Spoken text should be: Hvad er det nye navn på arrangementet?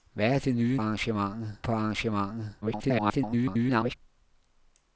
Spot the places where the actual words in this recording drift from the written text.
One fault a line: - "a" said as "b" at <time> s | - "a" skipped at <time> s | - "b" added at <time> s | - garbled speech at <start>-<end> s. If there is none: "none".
- "navn" said as "arrangementet" at 0.7 s
- garbled speech at 2.6-3.9 s